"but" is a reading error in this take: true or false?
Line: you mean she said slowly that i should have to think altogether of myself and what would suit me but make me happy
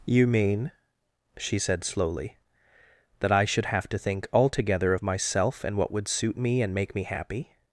true